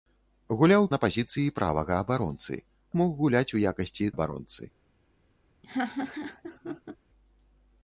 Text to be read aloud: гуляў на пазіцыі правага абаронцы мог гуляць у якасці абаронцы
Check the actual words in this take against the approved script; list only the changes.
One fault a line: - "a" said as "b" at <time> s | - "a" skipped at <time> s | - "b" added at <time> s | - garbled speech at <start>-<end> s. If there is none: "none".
none